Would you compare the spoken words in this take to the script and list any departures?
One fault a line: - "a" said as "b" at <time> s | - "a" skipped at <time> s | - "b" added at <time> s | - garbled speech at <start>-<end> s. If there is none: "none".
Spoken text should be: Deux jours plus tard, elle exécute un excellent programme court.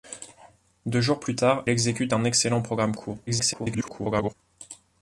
- "elle" skipped at 1.7 s
- garbled speech at 3.3-4.3 s